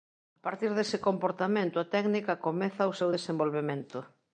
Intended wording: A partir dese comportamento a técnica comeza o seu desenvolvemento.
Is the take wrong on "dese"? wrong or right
right